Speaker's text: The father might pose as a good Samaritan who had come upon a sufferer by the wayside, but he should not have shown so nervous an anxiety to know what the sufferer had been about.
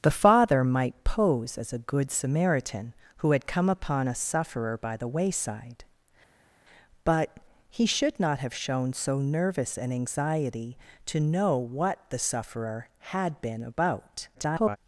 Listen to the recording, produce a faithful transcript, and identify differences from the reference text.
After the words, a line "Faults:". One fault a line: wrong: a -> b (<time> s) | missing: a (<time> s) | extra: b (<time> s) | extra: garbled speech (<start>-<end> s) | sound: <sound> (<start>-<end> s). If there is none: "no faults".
The father might pose as a good Samaritan who had come upon a sufferer by the wayside, but he should not have shown so nervous an anxiety to know what the sufferer had been about. [garbled]
Faults:
extra: garbled speech (14.3-14.8 s)